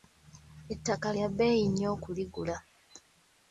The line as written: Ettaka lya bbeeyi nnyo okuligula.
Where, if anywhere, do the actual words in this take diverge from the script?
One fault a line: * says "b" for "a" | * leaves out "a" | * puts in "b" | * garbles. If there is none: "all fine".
all fine